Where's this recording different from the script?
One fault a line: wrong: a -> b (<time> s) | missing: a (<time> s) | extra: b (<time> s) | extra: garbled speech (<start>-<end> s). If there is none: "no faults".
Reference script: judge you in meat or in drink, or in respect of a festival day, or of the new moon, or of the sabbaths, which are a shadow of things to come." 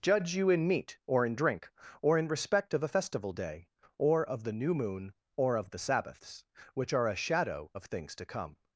no faults